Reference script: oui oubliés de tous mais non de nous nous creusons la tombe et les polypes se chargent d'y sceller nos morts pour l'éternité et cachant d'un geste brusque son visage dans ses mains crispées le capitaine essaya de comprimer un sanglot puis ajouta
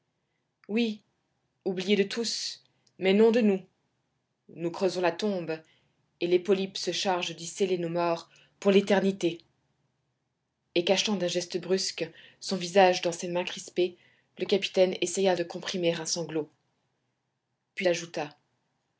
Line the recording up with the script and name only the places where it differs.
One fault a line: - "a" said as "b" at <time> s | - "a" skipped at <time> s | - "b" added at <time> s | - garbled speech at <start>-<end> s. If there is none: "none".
none